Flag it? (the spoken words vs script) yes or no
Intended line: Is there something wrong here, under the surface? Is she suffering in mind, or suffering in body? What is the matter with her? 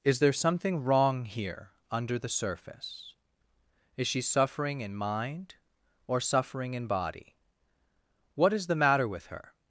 no